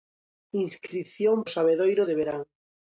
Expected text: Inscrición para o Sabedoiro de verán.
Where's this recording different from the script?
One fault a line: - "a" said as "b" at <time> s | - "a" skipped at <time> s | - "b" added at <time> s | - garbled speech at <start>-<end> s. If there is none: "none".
- "para" skipped at 1.4 s